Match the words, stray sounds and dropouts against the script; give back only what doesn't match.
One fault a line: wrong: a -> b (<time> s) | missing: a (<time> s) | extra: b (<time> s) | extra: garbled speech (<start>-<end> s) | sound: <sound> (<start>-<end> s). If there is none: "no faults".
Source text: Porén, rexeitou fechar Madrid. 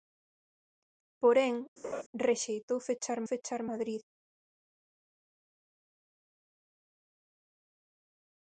sound: laugh (1.8-2.0 s)
extra: fechar (3.3 s)